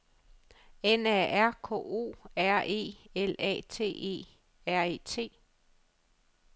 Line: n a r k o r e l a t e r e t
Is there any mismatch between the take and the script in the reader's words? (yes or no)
no